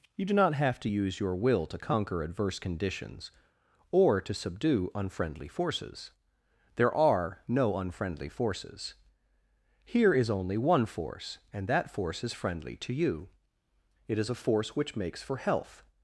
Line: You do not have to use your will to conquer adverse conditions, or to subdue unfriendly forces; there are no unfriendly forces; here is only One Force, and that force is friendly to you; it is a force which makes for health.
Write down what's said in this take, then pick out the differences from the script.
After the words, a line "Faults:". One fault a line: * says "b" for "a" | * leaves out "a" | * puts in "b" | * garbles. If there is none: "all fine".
You do not have to use your will to conquer adverse conditions, or to subdue unfriendly forces; there are no unfriendly forces; here is only One Force, and that force is friendly to you; it is a force which makes for health.
Faults:
all fine